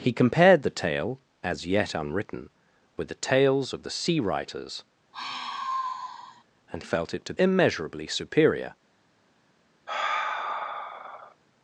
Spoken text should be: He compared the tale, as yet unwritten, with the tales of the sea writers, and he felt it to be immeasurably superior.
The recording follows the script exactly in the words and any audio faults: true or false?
false